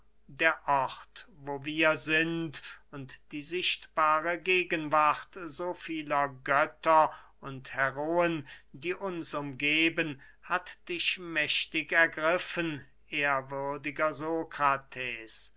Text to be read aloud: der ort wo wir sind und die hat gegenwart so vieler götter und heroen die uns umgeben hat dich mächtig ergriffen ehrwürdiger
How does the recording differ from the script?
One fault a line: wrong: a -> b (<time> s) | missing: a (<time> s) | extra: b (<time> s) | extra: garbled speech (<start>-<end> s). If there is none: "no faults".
wrong: hat -> sichtbare (3.4 s)